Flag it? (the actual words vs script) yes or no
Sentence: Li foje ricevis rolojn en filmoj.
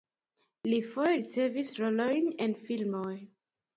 no